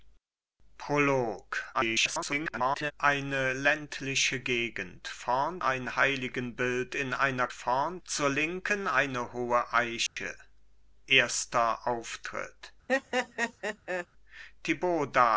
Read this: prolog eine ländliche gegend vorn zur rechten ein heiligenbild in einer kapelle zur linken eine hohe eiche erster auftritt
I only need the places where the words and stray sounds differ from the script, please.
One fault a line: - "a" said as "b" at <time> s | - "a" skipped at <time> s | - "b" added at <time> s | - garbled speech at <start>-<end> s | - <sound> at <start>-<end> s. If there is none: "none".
- garbled speech at 1.7-2.9 s
- "zur rechten" skipped at 5.6 s
- "kapelle" said as "vorn" at 7.5 s
- dropout at 10.1-10.2 s
- laugh at 12.9-14.1 s